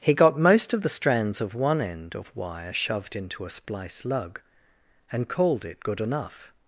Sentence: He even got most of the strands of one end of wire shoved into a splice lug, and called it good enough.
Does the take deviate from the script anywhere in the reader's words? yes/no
yes